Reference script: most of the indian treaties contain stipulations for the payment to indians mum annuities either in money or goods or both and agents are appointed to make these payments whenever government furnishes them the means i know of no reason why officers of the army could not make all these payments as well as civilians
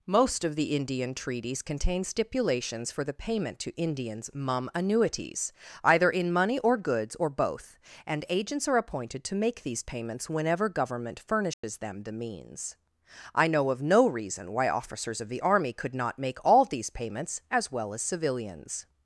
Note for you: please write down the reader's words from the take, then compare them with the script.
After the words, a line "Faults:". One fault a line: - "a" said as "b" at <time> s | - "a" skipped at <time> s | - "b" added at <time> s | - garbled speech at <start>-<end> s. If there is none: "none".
most of the indian treaties contain stipulations for the payment to indians mum annuities either in money or goods or both and agents are appointed to make these payments whenever government furnishes them the means i know of no reason why officers of the army could not make all these payments as well as civilians
Faults:
none